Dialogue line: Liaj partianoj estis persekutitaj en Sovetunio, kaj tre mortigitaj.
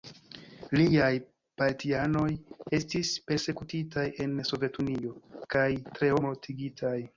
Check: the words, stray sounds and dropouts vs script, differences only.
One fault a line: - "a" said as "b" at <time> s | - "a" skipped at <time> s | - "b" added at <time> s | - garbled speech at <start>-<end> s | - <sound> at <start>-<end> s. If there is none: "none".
none